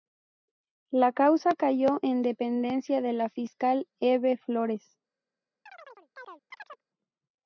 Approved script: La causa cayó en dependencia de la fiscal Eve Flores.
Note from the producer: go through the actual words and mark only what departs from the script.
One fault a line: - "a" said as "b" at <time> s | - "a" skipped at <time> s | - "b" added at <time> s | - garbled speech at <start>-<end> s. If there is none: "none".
none